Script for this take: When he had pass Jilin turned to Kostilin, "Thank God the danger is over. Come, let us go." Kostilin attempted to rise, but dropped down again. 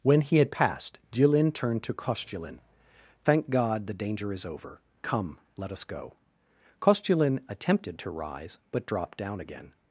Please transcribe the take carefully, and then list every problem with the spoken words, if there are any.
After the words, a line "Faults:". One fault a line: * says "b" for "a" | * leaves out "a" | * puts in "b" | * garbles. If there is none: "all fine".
When he had passed Jilin turned to Kostilin, "Thank God the danger is over. Come, let us go." Kostilin attempted to rise, but dropped down again.
Faults:
* says "passed" for "pass"